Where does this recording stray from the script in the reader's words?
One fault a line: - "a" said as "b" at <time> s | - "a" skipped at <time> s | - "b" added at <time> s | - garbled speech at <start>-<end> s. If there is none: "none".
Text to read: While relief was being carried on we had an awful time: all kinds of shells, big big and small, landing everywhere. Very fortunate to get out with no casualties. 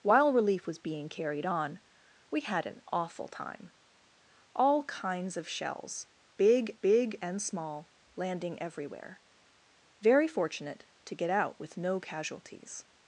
none